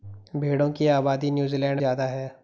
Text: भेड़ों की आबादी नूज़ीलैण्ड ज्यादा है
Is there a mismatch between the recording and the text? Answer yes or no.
no